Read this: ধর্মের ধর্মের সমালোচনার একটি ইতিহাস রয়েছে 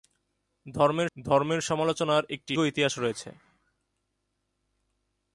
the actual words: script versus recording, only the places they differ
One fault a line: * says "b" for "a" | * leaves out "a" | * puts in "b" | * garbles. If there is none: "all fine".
all fine